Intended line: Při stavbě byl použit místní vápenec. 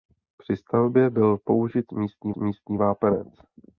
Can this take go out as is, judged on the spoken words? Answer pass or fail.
fail